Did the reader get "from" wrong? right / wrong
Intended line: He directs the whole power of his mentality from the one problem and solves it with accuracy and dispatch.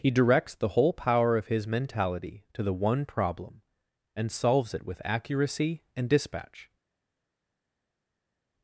wrong